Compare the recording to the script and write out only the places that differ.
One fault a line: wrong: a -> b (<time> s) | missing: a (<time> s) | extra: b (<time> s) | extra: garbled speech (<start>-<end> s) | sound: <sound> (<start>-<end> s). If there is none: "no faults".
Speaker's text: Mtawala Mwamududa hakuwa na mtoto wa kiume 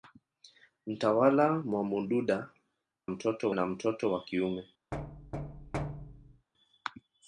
wrong: hakuwa -> mtoto (3.1 s)
sound: thud (4.9-6.5 s)